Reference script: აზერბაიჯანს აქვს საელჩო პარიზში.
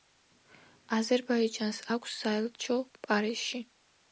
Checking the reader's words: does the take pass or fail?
pass